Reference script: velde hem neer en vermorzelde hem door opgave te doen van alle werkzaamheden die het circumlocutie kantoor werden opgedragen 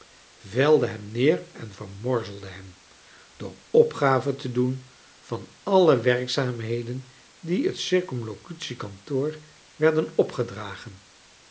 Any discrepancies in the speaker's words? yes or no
no